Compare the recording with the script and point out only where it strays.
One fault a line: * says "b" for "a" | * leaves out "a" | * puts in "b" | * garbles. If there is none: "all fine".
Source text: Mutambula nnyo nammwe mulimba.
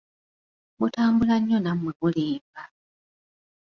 all fine